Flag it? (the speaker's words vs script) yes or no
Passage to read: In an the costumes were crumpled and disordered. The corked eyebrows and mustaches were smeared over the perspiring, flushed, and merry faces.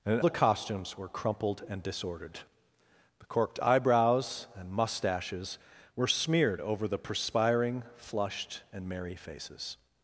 no